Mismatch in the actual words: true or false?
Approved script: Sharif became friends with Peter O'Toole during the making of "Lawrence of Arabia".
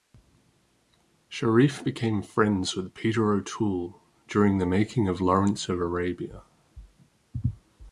false